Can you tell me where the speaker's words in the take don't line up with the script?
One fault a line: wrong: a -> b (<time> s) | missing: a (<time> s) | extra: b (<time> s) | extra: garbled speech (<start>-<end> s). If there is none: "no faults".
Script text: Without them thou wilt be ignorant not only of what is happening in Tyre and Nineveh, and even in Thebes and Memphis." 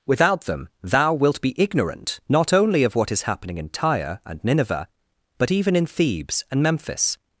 wrong: and -> but (5.4 s)